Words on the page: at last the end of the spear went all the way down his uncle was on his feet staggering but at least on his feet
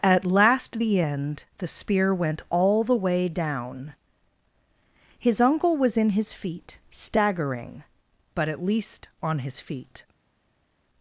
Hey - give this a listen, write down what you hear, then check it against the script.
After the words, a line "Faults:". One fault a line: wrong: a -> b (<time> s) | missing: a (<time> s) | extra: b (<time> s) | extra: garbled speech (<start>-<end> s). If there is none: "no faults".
at last the end the spear went all the way down his uncle was in his feet staggering but at least on his feet
Faults:
missing: of (1.4 s)
wrong: on -> in (6.0 s)